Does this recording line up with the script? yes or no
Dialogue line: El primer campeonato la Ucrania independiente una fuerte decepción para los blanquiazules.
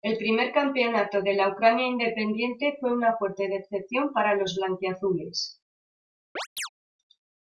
no